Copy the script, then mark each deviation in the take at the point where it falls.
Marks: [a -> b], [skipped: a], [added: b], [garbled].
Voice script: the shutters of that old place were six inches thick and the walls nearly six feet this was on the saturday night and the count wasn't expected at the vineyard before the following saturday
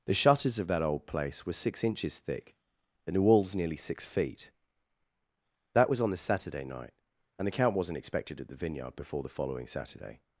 the shutters of that old place were six inches thick and the walls nearly six feet [this -> that] was on the saturday night and the count wasn't expected at the vineyard before the following saturday